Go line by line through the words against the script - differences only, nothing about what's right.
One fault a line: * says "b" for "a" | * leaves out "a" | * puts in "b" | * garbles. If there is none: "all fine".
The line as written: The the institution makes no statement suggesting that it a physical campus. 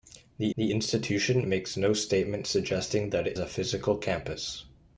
all fine